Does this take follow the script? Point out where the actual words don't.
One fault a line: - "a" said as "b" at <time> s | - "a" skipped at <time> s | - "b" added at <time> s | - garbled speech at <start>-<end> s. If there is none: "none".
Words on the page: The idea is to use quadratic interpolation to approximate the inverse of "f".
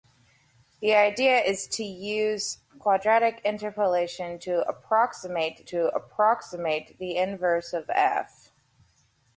- "to approximate" added at 5.6 s